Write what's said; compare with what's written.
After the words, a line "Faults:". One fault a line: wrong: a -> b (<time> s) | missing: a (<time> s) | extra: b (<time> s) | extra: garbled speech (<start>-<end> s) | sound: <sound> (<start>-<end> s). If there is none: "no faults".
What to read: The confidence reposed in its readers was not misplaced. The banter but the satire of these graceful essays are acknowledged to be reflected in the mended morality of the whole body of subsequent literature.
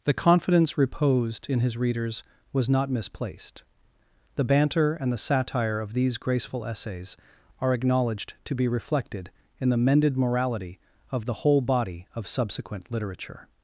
The confidence reposed in his readers was not misplaced. The banter and the satire of these graceful essays are acknowledged to be reflected in the mended morality of the whole body of subsequent literature.
Faults:
wrong: its -> his (1.6 s)
wrong: but -> and (4.9 s)